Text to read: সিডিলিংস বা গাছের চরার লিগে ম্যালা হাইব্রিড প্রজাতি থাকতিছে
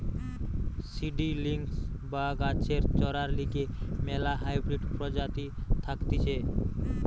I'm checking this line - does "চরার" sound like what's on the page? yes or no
yes